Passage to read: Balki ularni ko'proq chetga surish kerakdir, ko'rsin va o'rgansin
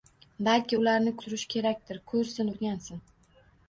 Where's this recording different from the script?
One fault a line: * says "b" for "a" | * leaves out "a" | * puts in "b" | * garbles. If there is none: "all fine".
* leaves out "ko'proq chetga"
* leaves out "va"